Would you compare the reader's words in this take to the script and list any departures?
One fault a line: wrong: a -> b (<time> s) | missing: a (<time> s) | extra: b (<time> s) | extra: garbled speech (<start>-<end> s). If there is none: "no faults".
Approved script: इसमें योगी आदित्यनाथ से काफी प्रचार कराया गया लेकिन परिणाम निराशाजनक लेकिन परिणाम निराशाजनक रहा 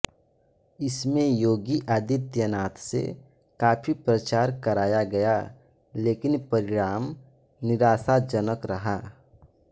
missing: लेकिन परिणाम निराशाजनक (8.7 s)